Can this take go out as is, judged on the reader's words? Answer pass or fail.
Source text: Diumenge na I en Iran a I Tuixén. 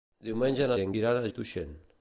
pass